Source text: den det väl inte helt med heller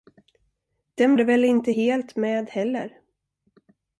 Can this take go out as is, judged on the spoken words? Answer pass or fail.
pass